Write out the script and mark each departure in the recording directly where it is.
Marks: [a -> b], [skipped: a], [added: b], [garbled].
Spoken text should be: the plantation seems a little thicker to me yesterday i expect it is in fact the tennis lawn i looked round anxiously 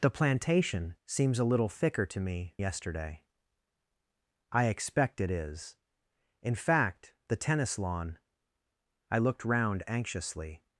the plantation seems a little thicker to me yesterday i expect it is in fact the tennis lawn i looked round anxiously